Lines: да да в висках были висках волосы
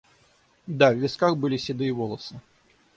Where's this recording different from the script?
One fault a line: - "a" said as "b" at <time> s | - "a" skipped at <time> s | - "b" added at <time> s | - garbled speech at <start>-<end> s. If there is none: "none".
- "да" skipped at 0.9 s
- "висках" said as "седые" at 1.6 s